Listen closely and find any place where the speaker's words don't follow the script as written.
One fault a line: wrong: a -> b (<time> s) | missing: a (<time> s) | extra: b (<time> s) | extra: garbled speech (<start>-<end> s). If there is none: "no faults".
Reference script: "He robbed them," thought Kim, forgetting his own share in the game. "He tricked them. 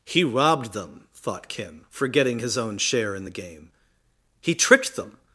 no faults